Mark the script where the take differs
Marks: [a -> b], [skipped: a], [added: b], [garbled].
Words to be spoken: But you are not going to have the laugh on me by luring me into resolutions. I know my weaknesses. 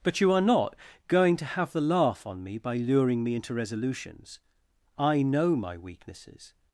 But you are not going to have the laugh on me by luring me into resolutions. I know my weaknesses.